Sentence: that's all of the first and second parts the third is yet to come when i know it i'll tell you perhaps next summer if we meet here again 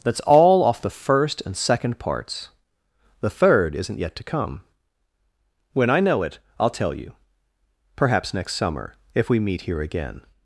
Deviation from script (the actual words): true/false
true